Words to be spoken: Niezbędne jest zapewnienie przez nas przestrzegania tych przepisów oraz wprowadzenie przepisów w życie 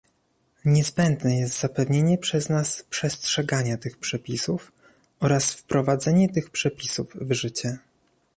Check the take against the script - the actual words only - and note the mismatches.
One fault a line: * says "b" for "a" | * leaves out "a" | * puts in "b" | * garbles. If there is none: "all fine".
* puts in "tych"